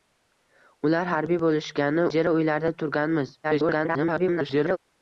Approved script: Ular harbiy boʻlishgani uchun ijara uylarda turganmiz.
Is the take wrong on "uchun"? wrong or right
wrong